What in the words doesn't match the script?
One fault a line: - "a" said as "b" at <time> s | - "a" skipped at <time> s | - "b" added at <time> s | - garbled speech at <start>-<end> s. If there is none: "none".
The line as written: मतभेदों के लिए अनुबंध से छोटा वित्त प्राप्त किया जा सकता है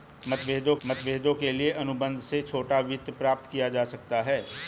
- "मतभेदों" added at 0.8 s